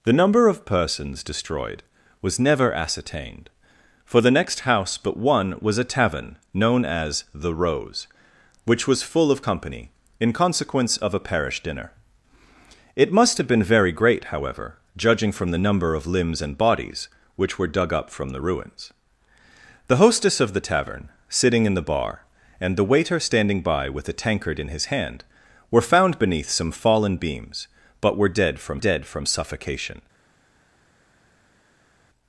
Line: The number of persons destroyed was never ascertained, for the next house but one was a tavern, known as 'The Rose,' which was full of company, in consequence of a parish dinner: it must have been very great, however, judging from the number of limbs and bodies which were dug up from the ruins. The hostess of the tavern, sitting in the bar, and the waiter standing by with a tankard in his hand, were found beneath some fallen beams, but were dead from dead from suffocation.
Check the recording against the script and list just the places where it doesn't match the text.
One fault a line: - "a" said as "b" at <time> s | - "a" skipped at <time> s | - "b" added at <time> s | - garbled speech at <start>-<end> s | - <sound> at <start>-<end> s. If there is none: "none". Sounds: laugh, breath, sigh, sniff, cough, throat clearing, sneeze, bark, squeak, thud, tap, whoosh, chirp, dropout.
none